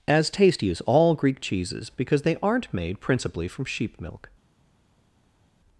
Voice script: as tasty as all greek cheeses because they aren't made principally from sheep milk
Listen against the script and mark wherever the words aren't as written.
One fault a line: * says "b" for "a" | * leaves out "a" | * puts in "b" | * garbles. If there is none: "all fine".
all fine